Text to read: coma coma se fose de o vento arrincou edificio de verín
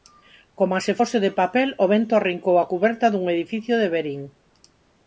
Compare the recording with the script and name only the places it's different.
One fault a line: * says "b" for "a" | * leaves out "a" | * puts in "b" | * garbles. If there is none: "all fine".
* leaves out "coma"
* puts in "papel"
* puts in "a cuberta dun"